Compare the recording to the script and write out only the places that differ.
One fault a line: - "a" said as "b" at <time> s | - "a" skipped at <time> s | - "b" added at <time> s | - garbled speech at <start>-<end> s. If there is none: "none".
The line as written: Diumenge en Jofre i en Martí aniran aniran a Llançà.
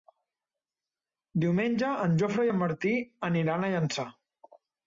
- "aniran" skipped at 3.7 s